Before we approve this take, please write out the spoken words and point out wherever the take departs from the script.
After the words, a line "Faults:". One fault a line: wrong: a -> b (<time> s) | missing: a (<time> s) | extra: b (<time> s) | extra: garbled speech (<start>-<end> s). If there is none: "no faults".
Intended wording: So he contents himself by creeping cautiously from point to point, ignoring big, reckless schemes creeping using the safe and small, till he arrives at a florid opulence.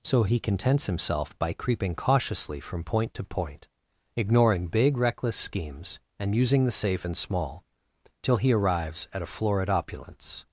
So he contents himself by creeping cautiously from point to point, ignoring big, reckless schemes and using the safe and small, till he arrives at a florid opulence.
Faults:
wrong: creeping -> and (6.2 s)